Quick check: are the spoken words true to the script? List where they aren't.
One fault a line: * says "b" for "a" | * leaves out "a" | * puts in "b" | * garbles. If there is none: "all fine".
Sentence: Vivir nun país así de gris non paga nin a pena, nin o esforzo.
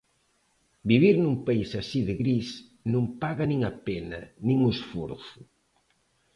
all fine